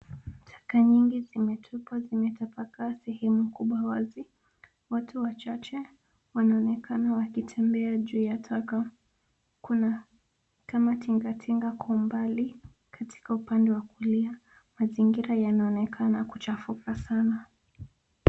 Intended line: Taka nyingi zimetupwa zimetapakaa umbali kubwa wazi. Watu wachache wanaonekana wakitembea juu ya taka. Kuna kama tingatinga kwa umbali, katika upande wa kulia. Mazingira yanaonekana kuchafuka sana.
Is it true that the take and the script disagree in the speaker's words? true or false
true